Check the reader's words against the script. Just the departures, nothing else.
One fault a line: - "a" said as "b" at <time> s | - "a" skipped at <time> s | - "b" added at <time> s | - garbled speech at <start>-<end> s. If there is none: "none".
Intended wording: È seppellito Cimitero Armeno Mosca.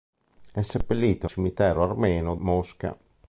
none